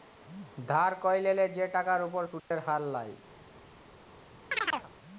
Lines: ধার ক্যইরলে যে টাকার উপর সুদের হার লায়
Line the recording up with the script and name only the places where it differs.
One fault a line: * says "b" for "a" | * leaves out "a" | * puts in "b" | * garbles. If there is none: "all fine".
all fine